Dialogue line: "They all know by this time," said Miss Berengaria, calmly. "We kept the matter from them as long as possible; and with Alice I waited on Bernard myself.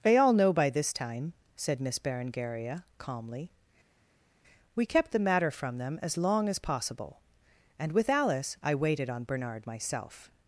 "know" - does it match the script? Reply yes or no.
yes